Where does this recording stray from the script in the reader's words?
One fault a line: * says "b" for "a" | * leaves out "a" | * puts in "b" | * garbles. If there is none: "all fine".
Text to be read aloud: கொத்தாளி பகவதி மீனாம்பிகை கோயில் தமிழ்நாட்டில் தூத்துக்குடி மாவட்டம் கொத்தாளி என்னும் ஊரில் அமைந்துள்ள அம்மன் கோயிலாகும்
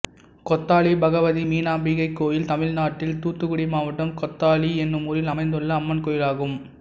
all fine